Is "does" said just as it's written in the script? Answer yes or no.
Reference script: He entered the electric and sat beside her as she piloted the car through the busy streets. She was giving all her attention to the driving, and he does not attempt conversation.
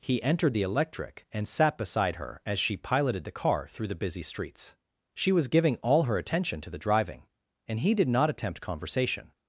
no